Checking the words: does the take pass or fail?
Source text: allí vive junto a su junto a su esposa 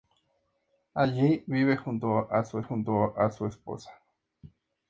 pass